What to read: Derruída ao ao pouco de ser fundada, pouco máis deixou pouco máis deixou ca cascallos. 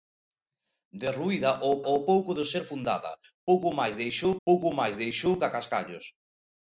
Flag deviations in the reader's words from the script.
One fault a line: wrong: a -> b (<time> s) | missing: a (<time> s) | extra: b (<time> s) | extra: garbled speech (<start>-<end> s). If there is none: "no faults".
no faults